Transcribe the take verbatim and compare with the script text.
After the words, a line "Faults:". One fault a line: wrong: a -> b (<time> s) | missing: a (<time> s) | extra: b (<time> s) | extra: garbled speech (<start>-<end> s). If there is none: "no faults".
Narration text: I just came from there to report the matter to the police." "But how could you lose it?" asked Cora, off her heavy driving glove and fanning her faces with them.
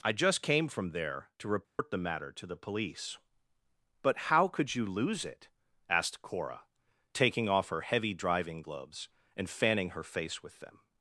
I just came from there to report the matter to the police." "But how could you lose it?" asked Cora, taking off her heavy driving gloves and fanning her face with them.
Faults:
extra: taking (7.1 s)
wrong: glove -> gloves (8.6 s)
wrong: faces -> face (10.0 s)